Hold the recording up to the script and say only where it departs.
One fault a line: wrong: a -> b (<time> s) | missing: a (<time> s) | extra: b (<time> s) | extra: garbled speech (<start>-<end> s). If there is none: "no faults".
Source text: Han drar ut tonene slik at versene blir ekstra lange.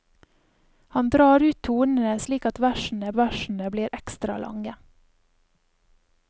extra: versene (3.1 s)